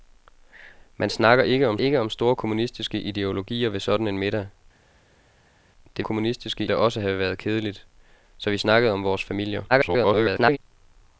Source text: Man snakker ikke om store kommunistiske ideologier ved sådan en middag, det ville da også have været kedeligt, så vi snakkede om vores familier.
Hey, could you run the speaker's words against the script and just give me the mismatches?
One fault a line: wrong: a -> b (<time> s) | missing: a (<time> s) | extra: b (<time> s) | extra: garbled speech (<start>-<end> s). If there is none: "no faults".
extra: ikke om (1.8 s)
wrong: ville -> kommunistiske (6.0 s)
extra: garbled speech (9.7-10.6 s)